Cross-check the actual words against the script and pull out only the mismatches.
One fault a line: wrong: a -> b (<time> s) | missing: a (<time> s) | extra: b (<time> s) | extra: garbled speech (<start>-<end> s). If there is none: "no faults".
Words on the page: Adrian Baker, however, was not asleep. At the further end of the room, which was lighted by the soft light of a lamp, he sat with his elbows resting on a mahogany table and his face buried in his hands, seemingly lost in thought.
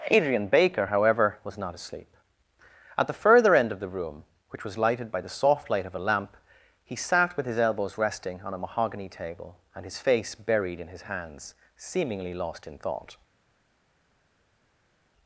no faults